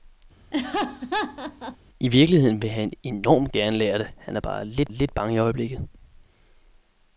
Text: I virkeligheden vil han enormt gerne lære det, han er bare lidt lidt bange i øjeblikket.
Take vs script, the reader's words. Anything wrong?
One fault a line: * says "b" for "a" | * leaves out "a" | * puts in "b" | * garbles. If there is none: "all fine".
all fine